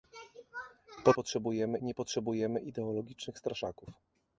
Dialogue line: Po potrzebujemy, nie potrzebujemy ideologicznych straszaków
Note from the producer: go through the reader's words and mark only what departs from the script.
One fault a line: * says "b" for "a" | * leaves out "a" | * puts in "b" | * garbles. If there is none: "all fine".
all fine